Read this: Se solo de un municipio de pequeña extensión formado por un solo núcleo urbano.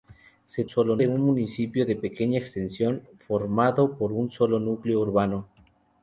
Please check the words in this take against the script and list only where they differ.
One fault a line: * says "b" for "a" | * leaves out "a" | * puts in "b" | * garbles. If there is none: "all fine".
all fine